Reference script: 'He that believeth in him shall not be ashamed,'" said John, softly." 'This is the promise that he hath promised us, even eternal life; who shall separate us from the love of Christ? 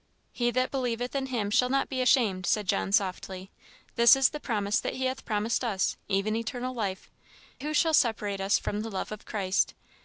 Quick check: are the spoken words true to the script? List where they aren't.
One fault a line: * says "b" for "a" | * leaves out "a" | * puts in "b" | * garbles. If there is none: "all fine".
all fine